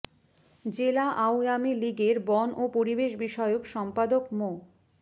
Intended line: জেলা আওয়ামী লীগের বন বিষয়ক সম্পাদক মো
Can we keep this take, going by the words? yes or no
no